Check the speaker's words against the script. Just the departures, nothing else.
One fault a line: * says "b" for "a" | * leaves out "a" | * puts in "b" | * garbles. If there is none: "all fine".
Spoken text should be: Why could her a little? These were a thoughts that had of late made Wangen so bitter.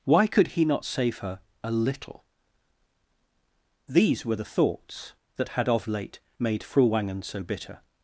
* puts in "he not save"
* says "the" for "a"
* puts in "Fru"